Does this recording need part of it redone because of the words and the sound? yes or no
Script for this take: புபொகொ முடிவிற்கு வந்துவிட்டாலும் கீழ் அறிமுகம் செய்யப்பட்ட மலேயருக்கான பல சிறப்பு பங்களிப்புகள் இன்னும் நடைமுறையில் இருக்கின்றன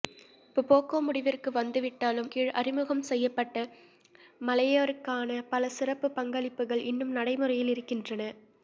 no